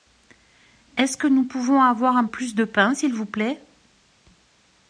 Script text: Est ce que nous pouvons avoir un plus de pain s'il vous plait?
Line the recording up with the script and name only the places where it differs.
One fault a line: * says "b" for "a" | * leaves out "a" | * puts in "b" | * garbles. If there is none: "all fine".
all fine